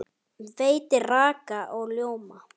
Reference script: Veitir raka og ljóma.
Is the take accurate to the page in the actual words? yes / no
yes